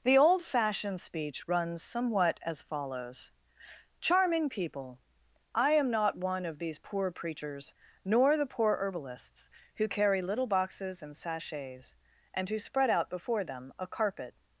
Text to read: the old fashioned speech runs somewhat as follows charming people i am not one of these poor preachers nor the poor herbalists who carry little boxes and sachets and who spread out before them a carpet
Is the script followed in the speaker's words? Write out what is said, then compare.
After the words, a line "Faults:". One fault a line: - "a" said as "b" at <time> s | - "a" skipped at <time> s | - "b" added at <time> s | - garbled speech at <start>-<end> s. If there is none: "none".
the old fashioned speech runs somewhat as follows charming people i am not one of these poor preachers nor the poor herbalists who carry little boxes and sachets and who spread out before them a carpet
Faults:
none